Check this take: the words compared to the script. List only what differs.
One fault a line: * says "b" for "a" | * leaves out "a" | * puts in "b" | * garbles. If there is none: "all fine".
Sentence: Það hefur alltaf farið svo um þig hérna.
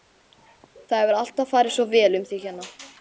* puts in "vel"